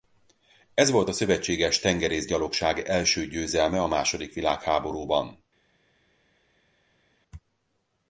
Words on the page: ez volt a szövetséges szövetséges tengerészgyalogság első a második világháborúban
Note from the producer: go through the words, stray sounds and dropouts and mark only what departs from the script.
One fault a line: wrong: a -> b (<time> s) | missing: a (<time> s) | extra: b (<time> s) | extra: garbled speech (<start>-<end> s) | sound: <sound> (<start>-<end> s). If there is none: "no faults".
missing: szövetséges (1.8 s)
extra: győzelme (3.3 s)